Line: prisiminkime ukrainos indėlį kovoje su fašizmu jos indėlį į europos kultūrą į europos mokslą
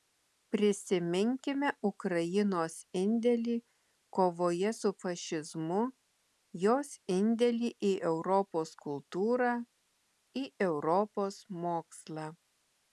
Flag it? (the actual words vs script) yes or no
no